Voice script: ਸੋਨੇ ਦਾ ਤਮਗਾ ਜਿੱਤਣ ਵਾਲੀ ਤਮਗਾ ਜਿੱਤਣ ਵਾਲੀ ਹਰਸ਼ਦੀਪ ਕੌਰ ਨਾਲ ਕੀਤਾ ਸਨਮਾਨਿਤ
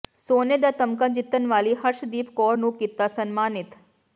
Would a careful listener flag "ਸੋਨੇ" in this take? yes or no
no